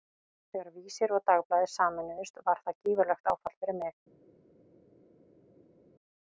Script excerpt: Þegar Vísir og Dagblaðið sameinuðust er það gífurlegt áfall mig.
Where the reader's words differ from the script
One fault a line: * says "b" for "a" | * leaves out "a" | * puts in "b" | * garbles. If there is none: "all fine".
* says "var" for "er"
* puts in "fyrir"